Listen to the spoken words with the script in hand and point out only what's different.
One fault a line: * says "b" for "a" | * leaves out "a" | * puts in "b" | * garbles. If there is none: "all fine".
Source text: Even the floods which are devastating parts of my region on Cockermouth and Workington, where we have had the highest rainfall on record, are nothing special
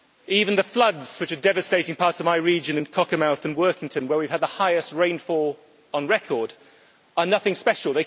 * says "in" for "on"